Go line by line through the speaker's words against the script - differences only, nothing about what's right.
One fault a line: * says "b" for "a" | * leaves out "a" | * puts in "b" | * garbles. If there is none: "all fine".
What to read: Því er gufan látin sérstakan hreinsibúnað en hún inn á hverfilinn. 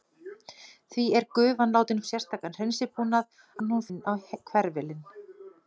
all fine